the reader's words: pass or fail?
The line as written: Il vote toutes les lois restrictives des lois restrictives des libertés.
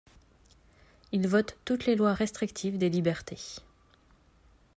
fail